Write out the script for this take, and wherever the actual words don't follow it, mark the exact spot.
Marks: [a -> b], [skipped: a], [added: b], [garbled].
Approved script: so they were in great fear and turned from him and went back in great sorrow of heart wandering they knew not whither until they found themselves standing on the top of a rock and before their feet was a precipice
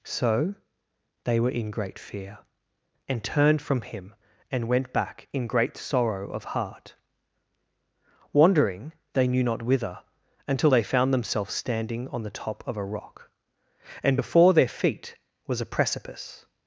so they were in great fear and turned from him and went back in great sorrow of heart wandering they knew not whither until they found themselves standing on the top of a rock and before their feet was a precipice